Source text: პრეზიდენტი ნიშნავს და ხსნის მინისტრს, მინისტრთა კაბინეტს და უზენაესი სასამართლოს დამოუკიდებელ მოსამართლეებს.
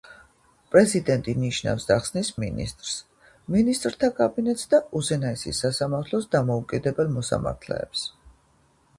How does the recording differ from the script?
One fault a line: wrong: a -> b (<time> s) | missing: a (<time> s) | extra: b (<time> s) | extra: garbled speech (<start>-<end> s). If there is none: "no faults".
no faults